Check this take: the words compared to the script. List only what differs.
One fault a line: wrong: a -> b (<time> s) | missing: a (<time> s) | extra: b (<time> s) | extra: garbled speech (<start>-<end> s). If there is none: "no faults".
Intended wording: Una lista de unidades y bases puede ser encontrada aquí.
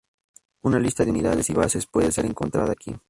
no faults